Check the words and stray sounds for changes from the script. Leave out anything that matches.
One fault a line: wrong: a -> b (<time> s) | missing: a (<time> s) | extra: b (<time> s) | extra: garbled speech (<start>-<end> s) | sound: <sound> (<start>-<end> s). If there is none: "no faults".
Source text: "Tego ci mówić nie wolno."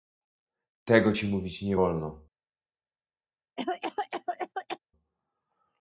sound: cough (3.6-4.8 s)